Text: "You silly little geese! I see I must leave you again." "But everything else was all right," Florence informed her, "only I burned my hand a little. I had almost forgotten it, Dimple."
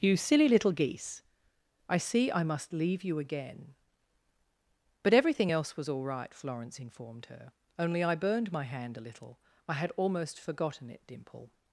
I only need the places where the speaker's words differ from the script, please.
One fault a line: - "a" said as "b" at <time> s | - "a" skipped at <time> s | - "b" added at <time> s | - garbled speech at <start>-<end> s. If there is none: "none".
none